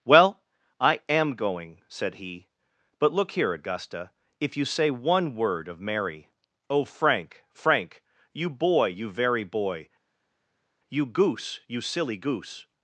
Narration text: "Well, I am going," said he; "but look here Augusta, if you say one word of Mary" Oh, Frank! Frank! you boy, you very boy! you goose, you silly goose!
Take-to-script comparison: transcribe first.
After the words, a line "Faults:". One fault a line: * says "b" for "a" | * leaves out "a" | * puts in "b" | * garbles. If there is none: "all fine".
"Well, I am going," said he; "but look here Augusta, if you say one word of Mary" Oh, Frank! Frank! you boy, you very boy! you goose, you silly goose!
Faults:
all fine